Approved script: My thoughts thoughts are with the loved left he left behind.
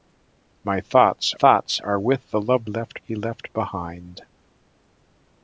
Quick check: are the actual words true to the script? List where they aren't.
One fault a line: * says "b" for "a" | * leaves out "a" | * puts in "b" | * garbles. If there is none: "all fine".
all fine